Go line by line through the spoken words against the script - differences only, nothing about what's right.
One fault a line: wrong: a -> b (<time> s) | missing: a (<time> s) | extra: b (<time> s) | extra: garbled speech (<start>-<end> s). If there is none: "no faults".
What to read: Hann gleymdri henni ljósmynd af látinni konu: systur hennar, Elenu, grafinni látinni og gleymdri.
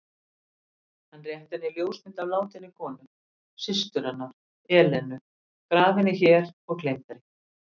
wrong: gleymdri -> rétti (1.3 s)
wrong: látinni -> hér (6.2 s)